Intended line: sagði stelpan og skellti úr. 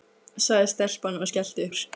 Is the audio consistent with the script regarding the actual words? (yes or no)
yes